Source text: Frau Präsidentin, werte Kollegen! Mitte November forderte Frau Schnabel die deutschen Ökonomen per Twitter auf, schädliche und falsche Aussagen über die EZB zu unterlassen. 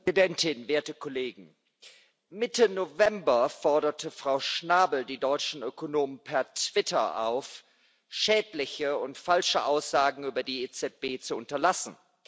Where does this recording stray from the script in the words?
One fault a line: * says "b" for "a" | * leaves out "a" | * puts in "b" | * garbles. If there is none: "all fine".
all fine